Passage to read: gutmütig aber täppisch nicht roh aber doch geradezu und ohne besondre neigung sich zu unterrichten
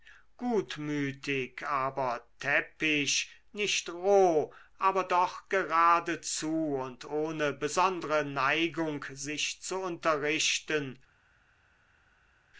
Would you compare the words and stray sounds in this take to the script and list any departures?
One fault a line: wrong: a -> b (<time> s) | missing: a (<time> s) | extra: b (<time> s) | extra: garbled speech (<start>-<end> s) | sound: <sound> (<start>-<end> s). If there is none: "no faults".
no faults